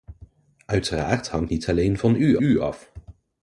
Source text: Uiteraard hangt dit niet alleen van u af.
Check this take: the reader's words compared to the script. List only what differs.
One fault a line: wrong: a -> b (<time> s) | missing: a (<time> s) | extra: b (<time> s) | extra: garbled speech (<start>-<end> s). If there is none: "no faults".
missing: dit (1.5 s)
extra: u (2.4 s)